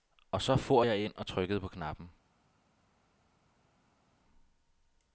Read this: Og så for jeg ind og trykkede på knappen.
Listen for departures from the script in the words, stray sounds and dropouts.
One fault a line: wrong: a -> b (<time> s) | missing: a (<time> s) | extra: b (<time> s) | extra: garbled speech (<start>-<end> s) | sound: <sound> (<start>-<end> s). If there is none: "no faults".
no faults